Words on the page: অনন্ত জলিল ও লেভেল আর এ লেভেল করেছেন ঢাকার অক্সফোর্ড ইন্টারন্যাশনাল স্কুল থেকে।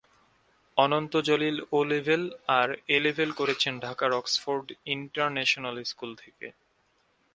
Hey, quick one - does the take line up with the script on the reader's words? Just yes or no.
yes